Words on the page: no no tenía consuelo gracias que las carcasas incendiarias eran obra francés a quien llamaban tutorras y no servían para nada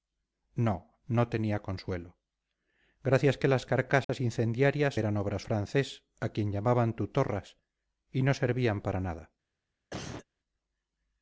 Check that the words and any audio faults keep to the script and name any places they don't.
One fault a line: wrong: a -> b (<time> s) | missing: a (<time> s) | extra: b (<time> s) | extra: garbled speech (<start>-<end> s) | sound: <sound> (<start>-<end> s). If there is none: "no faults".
sound: dropout (4.0-4.1 s)
sound: cough (9.9-10.3 s)